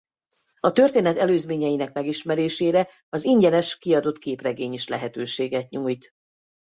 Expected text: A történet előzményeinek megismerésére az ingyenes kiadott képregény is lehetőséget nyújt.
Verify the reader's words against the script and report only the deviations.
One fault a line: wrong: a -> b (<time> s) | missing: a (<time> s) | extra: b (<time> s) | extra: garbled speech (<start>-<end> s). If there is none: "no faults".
no faults